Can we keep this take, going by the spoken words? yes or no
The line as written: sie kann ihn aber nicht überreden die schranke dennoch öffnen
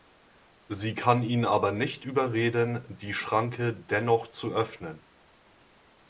no